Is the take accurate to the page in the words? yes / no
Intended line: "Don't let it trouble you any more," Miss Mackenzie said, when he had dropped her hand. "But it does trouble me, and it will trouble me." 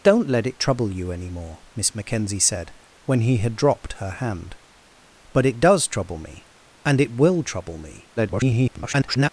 no